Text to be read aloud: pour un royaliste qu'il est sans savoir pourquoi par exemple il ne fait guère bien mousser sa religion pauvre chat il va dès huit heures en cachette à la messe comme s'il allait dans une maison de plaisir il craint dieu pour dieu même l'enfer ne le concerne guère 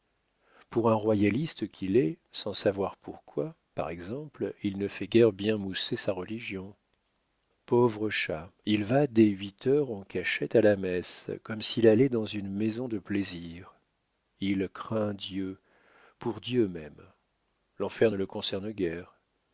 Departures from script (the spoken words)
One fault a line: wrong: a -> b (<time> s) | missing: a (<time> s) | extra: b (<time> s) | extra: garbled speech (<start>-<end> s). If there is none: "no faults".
no faults